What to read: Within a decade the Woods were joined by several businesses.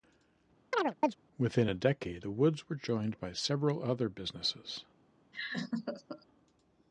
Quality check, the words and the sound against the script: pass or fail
fail